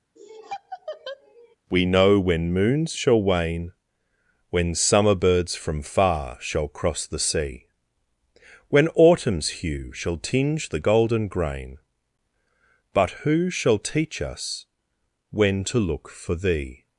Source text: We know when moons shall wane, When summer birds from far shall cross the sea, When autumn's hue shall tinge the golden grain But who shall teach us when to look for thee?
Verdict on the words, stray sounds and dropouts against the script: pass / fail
fail